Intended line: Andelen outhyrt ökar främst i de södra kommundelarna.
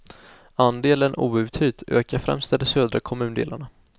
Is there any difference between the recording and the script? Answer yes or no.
no